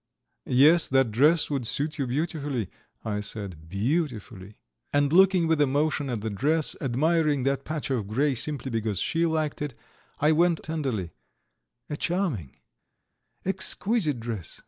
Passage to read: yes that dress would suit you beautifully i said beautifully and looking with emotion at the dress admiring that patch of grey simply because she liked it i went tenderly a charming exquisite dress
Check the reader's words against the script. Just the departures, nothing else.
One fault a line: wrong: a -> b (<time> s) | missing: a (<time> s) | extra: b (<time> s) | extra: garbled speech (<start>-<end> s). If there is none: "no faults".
no faults